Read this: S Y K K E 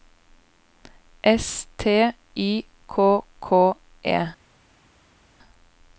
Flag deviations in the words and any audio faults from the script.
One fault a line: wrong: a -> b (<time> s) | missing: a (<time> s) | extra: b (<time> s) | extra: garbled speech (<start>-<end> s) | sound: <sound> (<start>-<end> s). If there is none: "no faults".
extra: T (1.8 s)